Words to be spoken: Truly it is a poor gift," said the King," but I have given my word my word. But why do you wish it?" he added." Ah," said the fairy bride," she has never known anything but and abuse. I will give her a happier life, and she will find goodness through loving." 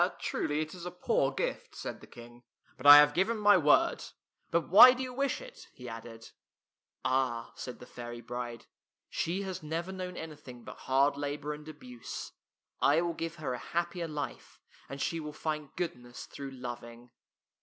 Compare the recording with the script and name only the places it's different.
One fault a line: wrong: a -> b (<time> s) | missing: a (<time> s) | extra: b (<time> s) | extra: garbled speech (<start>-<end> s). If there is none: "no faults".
missing: my word (4.0 s)
extra: hard labor (10.8 s)